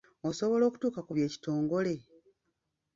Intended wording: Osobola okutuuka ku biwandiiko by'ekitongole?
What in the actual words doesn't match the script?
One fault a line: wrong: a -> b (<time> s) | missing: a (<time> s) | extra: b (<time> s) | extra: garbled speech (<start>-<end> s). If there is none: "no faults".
missing: biwandiiko (1.1 s)